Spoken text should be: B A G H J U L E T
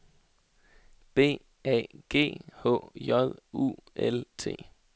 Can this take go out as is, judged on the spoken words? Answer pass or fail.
fail